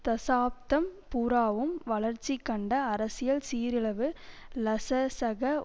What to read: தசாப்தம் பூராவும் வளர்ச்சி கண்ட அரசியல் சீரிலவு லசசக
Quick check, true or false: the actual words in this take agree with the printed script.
true